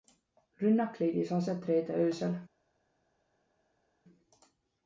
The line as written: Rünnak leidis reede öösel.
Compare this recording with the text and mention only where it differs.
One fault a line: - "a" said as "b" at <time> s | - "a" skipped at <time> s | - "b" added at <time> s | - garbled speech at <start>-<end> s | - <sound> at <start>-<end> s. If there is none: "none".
- "aset" added at 1.3 s